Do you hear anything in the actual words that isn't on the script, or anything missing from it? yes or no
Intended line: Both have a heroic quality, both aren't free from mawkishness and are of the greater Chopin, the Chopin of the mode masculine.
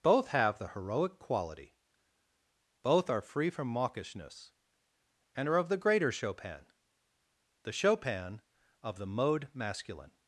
yes